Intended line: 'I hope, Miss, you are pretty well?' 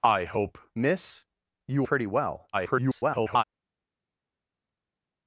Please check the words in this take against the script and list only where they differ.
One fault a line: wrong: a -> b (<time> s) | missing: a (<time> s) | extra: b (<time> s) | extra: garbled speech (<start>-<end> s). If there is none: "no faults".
missing: are (1.9 s)
extra: garbled speech (2.5-3.4 s)